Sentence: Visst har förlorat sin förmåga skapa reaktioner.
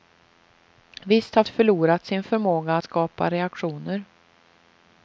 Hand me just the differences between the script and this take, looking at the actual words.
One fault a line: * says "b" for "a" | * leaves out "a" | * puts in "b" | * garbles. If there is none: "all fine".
all fine